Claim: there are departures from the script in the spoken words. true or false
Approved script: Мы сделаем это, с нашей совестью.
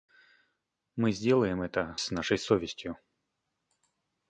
false